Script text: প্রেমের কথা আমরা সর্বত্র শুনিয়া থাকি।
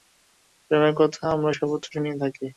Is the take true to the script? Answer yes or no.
yes